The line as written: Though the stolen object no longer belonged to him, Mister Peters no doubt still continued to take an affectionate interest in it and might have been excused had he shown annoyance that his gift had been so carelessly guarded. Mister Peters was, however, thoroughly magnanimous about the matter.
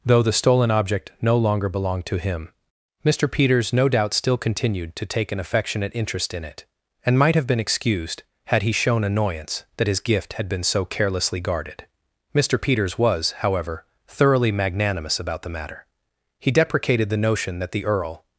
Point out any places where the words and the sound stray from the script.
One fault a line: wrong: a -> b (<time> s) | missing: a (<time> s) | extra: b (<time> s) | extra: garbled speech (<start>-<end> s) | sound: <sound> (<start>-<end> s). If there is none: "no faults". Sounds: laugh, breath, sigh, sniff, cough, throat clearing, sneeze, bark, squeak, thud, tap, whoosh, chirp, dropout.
extra: He deprecated the notion that the earl (16.4 s)